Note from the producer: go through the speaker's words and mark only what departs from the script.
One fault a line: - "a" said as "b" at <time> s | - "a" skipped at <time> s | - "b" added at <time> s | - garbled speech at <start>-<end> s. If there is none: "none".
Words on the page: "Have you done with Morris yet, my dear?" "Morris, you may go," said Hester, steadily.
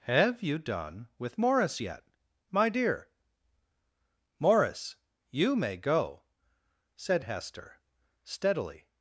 none